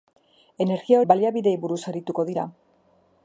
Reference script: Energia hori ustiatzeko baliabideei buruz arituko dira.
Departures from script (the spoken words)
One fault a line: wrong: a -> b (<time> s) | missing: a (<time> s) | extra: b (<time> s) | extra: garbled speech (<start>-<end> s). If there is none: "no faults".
missing: hori ustiatzeko (1.0 s)